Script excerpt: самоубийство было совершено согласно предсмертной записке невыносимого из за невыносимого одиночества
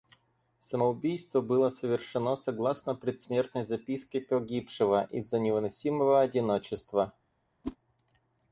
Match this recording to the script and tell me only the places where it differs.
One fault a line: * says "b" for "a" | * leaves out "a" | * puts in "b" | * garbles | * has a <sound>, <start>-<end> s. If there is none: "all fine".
* says "погибшего" for "невыносимого"
* has a whoosh, 7.6-7.8 s